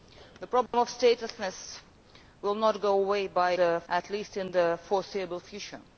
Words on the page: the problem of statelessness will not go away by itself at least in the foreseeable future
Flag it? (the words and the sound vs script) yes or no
yes